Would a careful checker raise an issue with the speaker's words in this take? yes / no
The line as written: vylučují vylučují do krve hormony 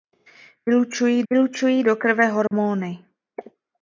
no